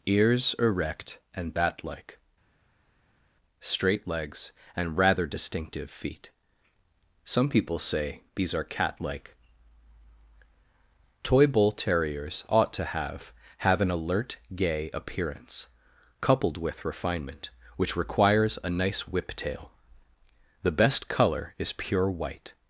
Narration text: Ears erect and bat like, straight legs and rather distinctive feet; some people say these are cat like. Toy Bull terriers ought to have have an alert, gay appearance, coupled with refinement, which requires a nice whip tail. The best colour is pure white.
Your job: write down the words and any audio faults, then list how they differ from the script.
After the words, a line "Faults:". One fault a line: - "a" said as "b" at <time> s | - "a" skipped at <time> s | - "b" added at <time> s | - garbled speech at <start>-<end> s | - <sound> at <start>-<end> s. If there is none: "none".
Ears erect and bat like, straight legs and rather distinctive feet; some people say these are cat like. Toy Bull terriers ought to have have an alert, gay appearance, coupled with refinement, which requires a nice whip tail. The best colour is pure white.
Faults:
none